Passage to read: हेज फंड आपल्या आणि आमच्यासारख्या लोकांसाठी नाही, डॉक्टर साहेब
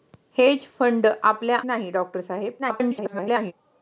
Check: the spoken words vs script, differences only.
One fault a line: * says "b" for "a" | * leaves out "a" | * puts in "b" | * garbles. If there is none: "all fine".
* leaves out "आणि आमच्यासारख्या लोकांसाठी"
* garbles